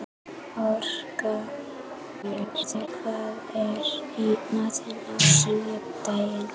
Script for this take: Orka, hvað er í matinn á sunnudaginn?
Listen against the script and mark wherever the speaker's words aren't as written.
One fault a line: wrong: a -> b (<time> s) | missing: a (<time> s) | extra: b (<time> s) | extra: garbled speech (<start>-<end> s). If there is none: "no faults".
extra: garbled speech (2.2-2.9 s)